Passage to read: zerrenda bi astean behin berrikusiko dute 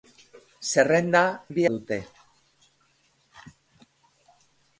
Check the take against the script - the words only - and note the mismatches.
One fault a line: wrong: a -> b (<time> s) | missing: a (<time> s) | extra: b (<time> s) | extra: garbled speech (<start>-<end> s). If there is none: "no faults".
missing: astean behin berrikusiko (1.6 s)